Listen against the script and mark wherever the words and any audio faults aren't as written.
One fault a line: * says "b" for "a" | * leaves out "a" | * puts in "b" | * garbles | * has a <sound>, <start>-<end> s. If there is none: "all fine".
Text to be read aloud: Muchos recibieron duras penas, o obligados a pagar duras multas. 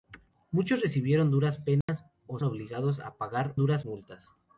* has a dropout, 1.8-1.9 s